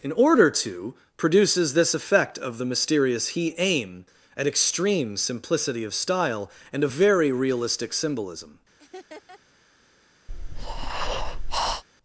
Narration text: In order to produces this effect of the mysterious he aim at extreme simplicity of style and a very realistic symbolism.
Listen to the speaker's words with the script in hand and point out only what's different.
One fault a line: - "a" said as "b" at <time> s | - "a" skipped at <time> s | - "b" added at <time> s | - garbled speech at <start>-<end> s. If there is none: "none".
none